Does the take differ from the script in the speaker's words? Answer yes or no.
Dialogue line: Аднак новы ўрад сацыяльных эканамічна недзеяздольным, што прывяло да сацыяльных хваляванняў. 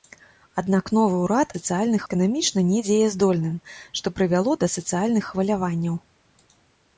no